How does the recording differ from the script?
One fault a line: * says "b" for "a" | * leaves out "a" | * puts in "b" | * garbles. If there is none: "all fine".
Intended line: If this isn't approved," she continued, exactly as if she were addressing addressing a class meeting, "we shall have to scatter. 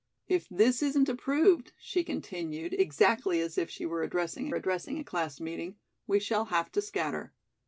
all fine